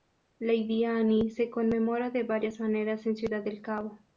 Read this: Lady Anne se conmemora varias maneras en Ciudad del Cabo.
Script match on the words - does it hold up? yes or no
no